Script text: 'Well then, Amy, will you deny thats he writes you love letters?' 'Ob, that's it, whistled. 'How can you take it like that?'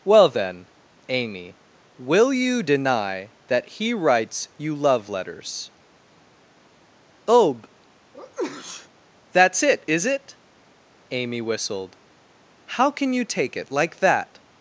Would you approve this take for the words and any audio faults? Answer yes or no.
no